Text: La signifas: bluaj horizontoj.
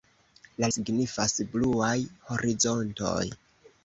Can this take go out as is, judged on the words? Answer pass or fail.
pass